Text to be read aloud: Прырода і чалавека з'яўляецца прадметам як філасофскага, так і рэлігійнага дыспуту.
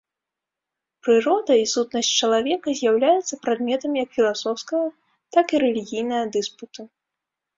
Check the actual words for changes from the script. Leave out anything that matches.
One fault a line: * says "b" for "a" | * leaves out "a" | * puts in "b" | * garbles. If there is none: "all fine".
* puts in "сутнасць"